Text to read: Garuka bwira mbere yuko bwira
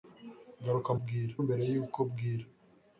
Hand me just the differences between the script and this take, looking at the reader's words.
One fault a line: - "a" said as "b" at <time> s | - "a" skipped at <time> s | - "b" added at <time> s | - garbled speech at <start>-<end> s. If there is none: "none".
none